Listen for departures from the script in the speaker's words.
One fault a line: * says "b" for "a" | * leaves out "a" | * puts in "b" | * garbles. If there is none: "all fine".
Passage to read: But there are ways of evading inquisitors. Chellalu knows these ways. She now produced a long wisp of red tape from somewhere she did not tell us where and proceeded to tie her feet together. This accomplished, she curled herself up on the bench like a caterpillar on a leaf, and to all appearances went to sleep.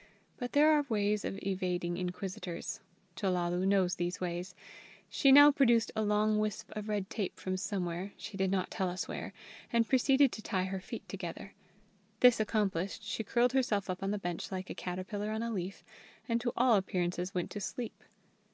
all fine